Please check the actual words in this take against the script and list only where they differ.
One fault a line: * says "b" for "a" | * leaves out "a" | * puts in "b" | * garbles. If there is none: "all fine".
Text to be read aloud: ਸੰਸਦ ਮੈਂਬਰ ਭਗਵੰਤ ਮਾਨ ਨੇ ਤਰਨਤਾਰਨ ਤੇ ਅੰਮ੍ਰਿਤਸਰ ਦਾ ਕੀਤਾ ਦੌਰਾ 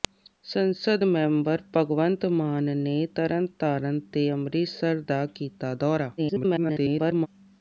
* garbles